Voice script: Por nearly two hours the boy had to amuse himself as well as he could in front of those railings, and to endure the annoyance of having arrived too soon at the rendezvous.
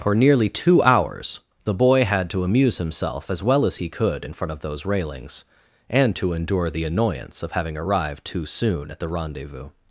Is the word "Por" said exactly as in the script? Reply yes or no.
no